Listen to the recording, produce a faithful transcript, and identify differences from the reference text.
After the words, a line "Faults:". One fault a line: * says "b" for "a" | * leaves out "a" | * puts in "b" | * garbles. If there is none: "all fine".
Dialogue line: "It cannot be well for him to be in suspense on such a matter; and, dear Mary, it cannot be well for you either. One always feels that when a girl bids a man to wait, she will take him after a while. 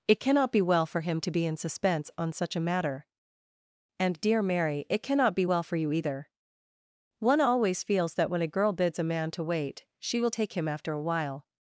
"It cannot be well for him to be in suspense on such a matter; and, dear Mary, it cannot be well for you either. One always feels that when a girl bids a man to wait, she will take him after a while.
Faults:
all fine